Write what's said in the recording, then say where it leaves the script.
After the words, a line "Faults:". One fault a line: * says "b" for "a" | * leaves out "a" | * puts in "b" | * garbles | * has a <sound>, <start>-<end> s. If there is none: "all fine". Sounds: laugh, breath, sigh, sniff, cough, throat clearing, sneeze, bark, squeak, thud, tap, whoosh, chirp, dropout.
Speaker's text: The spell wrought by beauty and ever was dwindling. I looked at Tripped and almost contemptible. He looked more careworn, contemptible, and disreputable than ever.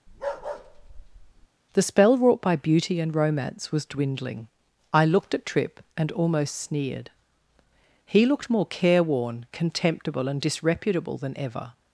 The spell wrought by beauty and romance was dwindling. I looked at Tripp and almost sneered. He looked more careworn, contemptible, and disreputable than ever.
Faults:
* has a bark, 0.1-1.5 s
* says "romance" for "ever"
* says "Tripp" for "Tripped"
* says "sneered" for "contemptible"